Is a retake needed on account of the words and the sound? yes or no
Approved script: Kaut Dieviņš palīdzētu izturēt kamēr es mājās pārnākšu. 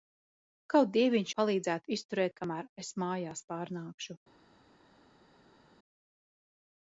no